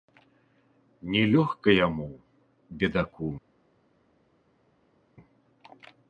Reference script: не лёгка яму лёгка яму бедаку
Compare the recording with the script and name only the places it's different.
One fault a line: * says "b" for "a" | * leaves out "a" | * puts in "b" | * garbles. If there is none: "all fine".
* leaves out "лёгка яму"